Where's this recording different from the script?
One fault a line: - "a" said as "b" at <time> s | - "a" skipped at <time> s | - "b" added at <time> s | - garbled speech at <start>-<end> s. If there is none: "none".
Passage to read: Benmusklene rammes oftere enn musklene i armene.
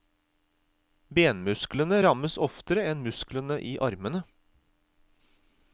none